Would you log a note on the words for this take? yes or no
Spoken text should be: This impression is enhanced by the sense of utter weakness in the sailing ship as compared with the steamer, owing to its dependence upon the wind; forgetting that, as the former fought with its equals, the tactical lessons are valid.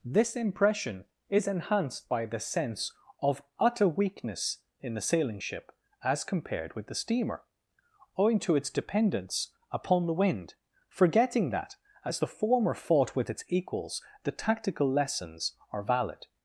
no